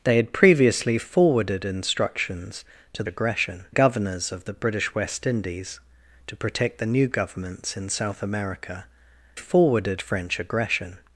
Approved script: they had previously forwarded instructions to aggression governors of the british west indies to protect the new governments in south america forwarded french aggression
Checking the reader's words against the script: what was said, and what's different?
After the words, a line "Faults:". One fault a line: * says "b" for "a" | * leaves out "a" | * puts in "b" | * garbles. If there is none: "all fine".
they had previously forwarded instructions to aggression governors of the british west indies to protect the new governments in south america forwarded french aggression
Faults:
all fine